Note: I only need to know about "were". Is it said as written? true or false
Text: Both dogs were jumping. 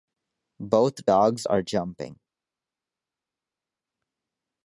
false